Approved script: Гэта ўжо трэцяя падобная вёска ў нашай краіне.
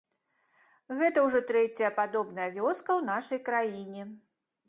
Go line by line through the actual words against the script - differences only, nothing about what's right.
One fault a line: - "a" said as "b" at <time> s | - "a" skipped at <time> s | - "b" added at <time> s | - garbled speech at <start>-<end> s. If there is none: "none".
none